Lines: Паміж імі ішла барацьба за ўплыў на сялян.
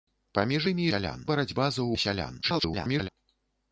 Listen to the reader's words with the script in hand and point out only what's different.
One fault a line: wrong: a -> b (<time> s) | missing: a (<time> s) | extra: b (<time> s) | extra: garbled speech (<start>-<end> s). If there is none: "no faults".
wrong: ішла -> сялян (0.9 s)
missing: ўплыў (1.9 s)
extra: garbled speech (2.4-3.1 s)